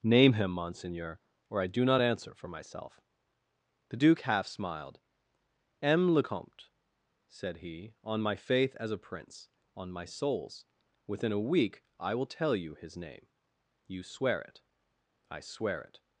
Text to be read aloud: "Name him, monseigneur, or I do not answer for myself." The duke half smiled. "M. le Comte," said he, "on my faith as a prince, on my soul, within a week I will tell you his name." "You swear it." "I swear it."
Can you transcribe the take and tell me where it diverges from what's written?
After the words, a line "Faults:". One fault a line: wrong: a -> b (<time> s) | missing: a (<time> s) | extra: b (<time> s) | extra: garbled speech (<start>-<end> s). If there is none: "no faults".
"Name him, monseigneur, or I do not answer for myself." The duke half smiled. "M. le Comte," said he, "on my faith as a prince, on my souls, within a week I will tell you his name." "You swear it." "I swear it."
Faults:
wrong: soul -> souls (10.0 s)